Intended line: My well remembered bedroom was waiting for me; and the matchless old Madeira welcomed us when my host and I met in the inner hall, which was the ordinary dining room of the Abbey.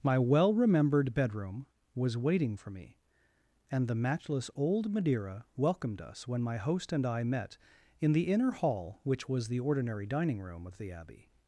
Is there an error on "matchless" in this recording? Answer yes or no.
no